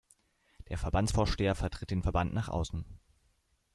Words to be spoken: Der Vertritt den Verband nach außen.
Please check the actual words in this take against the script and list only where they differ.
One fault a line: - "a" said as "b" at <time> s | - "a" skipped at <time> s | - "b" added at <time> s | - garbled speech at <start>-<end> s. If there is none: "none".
- "Verbandsvorsteher" added at 0.8 s